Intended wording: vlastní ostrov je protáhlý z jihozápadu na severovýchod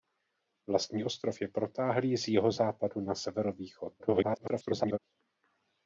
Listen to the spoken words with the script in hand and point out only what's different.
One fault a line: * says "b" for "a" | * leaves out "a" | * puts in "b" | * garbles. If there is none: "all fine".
* garbles